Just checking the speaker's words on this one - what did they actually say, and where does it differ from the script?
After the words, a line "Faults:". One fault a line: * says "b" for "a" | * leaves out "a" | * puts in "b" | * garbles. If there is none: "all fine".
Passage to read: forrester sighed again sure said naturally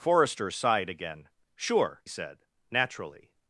forrester sighed again sure said naturally
Faults:
all fine